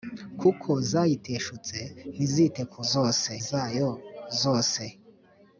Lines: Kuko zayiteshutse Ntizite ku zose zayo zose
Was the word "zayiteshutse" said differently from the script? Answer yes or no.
no